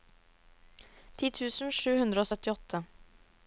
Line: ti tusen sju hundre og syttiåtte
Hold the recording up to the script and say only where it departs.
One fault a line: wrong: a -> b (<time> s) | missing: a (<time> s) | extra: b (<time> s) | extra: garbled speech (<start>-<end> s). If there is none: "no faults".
no faults